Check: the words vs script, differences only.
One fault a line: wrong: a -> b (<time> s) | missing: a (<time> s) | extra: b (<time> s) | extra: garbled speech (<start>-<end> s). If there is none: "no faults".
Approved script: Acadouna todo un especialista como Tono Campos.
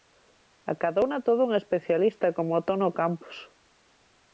no faults